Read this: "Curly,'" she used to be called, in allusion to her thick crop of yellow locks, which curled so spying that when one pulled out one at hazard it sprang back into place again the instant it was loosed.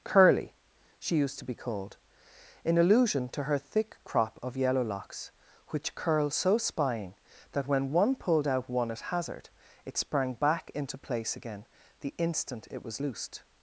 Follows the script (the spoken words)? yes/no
yes